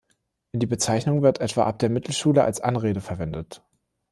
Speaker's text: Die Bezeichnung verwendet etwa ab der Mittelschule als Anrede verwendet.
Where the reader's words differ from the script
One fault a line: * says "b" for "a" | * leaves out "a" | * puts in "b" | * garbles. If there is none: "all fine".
* says "wird" for "verwendet"